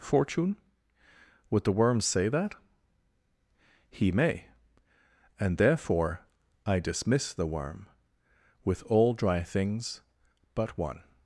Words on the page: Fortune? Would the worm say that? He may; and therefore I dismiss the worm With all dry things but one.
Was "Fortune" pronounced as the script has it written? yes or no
yes